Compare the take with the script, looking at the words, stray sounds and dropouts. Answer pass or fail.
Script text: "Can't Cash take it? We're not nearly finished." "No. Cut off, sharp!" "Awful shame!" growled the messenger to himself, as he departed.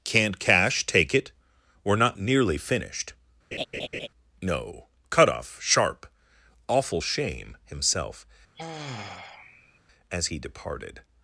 fail